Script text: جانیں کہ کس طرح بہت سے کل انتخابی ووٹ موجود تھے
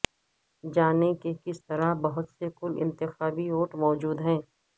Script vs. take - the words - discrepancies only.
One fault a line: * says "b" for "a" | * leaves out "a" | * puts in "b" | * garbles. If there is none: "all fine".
* says "ہیں" for "تھے"